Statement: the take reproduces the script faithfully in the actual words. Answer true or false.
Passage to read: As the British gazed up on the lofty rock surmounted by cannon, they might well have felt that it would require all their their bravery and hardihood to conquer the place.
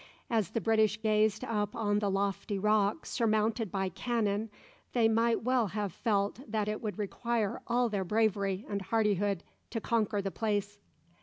false